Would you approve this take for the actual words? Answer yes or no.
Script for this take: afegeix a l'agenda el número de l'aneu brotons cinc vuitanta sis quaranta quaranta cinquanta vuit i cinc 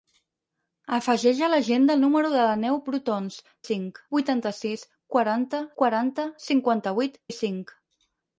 yes